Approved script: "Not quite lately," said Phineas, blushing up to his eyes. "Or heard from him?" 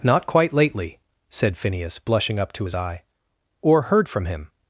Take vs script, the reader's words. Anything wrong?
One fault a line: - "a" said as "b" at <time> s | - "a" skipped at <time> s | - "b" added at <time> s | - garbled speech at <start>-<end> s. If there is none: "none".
- "eyes" said as "eye" at 2.7 s